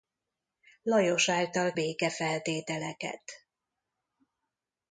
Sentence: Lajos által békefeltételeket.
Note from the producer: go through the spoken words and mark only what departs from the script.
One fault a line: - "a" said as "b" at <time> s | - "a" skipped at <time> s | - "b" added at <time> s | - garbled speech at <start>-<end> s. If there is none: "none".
none